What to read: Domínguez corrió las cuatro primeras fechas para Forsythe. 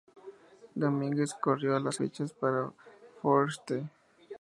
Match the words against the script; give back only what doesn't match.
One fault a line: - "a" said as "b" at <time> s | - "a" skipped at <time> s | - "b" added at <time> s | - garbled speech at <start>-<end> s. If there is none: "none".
- "cuatro primeras" skipped at 2.0 s